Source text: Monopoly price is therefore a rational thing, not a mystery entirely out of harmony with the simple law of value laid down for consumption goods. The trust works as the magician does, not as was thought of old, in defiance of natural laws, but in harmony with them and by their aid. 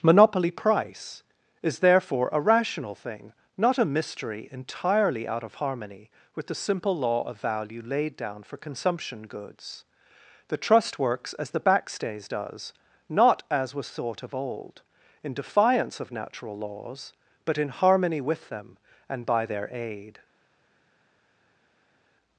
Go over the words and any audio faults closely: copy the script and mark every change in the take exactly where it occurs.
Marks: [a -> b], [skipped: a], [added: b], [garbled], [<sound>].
Monopoly price is therefore a rational thing, not a mystery entirely out of harmony with the simple law of value laid down for consumption goods. The trust works as the [magician -> backstays] does, not as was thought of old, in defiance of natural laws, but in harmony with them and by their aid.